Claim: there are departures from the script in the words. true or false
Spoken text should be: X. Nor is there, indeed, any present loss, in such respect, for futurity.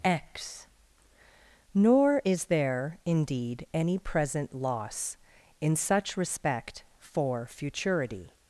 false